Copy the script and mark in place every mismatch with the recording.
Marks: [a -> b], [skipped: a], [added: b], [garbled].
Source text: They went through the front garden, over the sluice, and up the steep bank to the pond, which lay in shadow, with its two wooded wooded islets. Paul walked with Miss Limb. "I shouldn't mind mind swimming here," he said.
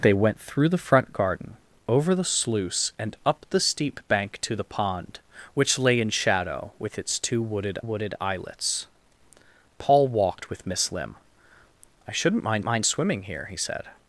They went through the front garden, over the sluice, and up the steep bank to the pond, which lay in shadow, with its two wooded wooded islets. Paul walked with Miss Limb. "I shouldn't mind mind swimming here," he said.